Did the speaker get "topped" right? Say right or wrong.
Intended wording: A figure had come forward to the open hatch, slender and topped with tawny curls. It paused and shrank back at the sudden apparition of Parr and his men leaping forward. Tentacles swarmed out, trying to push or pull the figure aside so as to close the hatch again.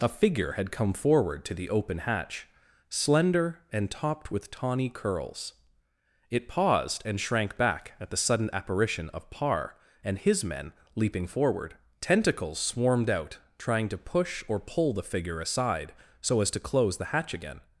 right